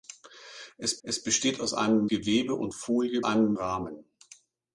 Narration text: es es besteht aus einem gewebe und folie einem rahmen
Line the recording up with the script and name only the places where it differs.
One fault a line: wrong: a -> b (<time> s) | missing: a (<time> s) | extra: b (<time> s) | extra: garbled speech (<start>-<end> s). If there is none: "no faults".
no faults